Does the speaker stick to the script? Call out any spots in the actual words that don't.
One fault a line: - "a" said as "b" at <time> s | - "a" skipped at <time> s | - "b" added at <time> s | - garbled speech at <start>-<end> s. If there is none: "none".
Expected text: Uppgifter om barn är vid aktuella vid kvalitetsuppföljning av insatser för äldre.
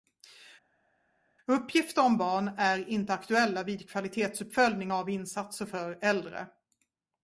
- "vid" said as "inte" at 2.9 s